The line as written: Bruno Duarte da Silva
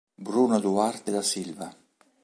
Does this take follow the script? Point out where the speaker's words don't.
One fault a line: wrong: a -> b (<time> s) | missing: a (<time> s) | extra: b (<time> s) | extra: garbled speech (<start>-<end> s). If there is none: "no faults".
no faults